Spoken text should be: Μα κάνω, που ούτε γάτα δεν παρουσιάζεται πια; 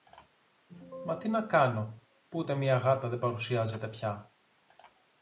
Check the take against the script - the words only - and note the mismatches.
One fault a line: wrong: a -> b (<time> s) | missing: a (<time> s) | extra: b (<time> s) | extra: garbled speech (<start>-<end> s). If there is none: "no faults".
extra: τι να (1.2 s)
extra: μια (2.5 s)